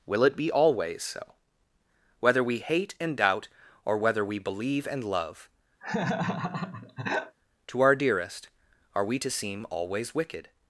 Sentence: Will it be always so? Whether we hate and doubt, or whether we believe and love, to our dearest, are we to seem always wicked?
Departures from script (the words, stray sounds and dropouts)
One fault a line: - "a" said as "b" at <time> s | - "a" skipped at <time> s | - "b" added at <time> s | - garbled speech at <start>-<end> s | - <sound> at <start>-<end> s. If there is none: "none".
- laugh at 5.8-7.4 s